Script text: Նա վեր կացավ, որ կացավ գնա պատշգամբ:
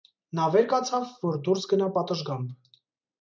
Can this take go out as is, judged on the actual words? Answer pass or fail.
fail